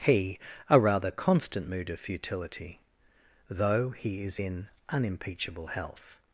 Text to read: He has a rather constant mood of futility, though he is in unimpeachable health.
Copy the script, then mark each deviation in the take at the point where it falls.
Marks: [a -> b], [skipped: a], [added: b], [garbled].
He [skipped: has] a rather constant mood of futility, though he is in unimpeachable health.